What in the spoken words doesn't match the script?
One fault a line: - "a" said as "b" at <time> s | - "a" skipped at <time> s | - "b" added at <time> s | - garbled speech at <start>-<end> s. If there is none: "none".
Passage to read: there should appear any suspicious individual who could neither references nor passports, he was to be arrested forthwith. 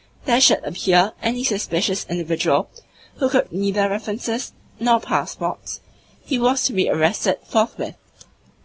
none